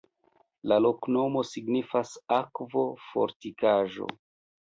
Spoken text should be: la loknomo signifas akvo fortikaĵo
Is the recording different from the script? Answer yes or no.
no